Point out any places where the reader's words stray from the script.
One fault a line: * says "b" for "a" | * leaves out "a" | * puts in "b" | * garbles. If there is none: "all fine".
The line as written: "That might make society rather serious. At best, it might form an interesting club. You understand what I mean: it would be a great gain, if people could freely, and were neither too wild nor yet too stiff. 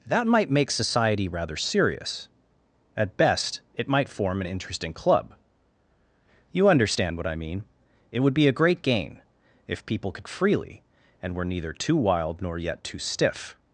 all fine